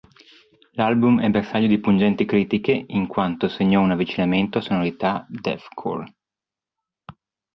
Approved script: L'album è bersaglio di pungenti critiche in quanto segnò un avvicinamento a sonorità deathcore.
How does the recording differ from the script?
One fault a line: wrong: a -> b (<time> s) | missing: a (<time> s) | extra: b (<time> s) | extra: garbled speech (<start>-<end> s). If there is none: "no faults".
no faults